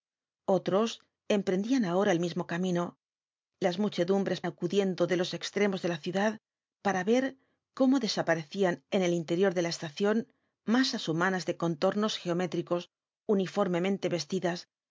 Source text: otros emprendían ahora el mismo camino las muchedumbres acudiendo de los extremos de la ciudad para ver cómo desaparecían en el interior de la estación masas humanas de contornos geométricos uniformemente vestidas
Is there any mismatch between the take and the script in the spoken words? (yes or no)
no